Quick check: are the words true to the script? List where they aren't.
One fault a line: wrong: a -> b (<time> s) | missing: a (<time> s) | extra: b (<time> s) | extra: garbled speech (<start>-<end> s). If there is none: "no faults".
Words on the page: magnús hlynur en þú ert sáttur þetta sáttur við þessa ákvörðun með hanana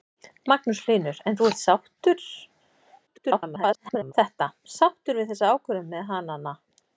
extra: garbled speech (3.1-4.1 s)